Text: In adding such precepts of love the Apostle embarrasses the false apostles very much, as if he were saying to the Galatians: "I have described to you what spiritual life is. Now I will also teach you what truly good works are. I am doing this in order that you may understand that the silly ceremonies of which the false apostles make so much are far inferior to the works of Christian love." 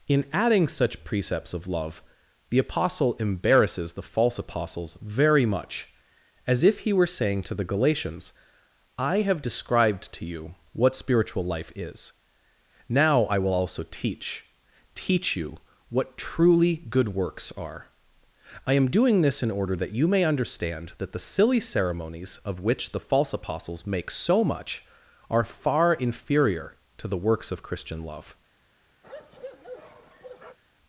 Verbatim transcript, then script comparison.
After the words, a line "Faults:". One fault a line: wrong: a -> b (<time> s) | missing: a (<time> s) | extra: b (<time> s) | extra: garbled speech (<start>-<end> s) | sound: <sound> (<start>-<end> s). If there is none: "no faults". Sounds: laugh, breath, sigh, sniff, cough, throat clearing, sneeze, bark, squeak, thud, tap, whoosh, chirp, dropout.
In adding such precepts of love the Apostle embarrasses the false apostles very much, as if he were saying to the Galatians: "I have described to you what spiritual life is. Now I will also teach teach you what truly good works are. I am doing this in order that you may understand that the silly ceremonies of which the false apostles make so much are far inferior to the works of Christian love."
Faults:
extra: teach (14.9 s)
sound: bark (29.0-30.6 s)